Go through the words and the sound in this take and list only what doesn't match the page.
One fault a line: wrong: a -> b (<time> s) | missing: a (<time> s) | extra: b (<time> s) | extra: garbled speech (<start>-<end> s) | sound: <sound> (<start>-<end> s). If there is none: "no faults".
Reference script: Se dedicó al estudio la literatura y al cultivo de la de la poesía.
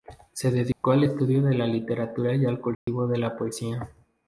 sound: dropout (0.7-0.8 s)
extra: de (1.4 s)
sound: dropout (2.7-2.9 s)
missing: de la (3.4 s)